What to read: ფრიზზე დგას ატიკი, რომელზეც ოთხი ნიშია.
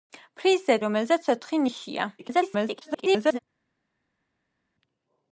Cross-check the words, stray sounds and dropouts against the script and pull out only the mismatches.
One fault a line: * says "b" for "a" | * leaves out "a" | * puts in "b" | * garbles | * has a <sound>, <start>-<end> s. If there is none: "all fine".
* leaves out "დგას ატიკი"
* garbles